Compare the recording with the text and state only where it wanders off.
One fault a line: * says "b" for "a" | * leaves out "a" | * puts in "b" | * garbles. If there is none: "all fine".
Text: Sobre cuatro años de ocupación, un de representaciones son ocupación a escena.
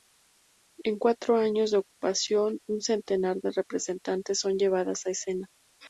* says "En" for "Sobre"
* puts in "centenar"
* says "llevadas" for "ocupación"